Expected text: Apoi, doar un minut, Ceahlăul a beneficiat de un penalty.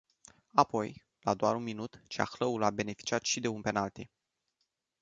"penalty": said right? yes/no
yes